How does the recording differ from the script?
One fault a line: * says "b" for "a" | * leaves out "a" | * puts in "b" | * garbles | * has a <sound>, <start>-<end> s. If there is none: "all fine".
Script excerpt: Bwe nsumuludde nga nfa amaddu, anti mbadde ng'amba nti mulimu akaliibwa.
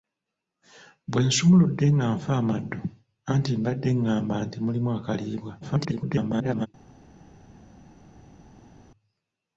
* garbles